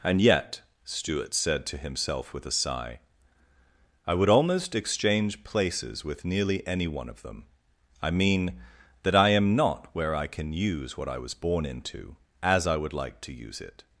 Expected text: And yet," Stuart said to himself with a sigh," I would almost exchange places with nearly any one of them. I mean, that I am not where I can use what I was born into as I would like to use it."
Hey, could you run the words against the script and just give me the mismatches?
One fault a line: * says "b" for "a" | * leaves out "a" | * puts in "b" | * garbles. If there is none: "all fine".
all fine